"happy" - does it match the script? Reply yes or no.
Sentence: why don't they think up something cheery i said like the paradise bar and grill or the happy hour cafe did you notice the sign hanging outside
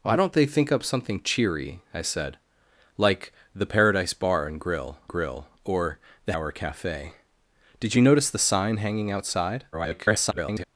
no